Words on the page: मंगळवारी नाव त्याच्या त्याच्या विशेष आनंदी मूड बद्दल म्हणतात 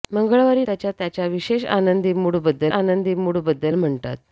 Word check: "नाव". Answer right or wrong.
wrong